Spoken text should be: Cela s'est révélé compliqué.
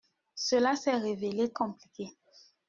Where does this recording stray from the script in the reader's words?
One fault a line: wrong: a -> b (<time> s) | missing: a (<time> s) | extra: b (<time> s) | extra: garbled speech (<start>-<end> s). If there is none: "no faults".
no faults